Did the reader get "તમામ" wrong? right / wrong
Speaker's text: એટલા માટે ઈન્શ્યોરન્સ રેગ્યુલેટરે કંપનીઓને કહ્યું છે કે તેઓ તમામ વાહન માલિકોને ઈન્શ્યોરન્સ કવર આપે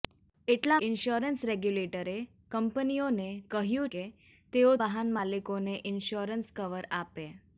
wrong